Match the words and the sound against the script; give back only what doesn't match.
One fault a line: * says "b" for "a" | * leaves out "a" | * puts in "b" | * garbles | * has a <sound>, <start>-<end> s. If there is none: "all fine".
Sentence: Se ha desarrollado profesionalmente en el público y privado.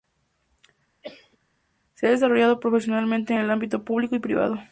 * has a cough, 1.0-1.4 s
* puts in "ámbito"